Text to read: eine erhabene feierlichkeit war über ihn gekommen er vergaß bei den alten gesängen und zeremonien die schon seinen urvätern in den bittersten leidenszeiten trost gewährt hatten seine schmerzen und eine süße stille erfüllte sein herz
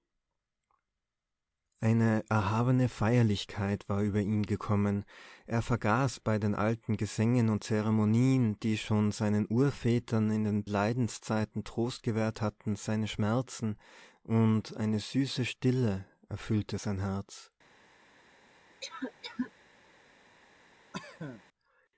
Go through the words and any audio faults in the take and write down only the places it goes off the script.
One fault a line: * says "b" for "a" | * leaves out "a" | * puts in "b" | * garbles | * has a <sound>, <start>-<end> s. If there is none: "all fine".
* leaves out "bittersten"
* has a cough, 18.8-19.5 s
* has a cough, 20.9-21.4 s